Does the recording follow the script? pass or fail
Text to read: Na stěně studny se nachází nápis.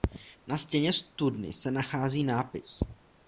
pass